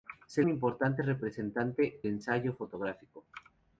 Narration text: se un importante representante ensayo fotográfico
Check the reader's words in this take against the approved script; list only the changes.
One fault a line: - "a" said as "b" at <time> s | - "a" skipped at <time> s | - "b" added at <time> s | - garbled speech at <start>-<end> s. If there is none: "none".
none